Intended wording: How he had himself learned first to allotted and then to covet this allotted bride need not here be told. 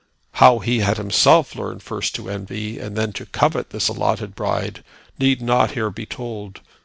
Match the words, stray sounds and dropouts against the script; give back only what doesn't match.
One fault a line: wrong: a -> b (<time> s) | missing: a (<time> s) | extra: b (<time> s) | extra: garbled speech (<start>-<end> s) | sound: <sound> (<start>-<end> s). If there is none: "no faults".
wrong: allotted -> envy (2.3 s)